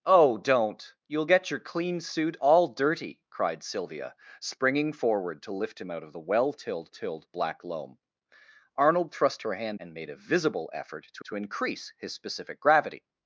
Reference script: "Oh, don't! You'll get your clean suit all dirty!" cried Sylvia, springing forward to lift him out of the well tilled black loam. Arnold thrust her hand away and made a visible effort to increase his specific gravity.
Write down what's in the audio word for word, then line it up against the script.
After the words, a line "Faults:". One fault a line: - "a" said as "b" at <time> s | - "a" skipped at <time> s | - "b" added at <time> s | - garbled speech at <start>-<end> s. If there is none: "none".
"Oh, don't! You'll get your clean suit all dirty!" cried Sylvia, springing forward to lift him out of the well tilled tilled black loam. Arnold thrust her hand and made a visible effort to to increase his specific gravity.
Faults:
- "tilled" added at 6.9 s
- "away" skipped at 9.8 s
- "to" added at 11.2 s